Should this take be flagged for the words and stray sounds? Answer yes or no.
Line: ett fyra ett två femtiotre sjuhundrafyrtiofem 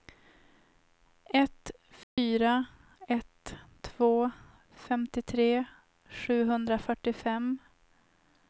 yes